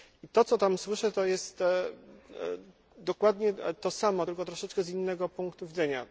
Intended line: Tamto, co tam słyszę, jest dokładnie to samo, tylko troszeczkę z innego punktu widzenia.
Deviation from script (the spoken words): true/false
true